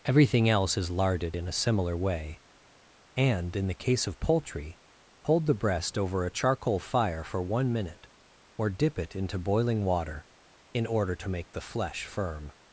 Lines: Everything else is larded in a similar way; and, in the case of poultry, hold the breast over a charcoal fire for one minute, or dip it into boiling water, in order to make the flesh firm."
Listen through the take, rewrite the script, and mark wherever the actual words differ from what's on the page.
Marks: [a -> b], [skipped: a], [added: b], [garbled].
Everything else is larded in a similar way; and, in the case of poultry, hold the breast over a charcoal fire for one minute, or dip it into boiling water, in order to make the flesh firm."